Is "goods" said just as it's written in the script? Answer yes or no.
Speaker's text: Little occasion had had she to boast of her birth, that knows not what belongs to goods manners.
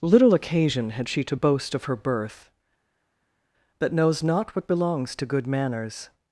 no